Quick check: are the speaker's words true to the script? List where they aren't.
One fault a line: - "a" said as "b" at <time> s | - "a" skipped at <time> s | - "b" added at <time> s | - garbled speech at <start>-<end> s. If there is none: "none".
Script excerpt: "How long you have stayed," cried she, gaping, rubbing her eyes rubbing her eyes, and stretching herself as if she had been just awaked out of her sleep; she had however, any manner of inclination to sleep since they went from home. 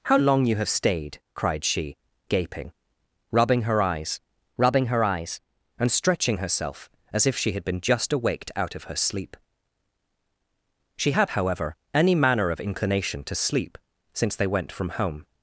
none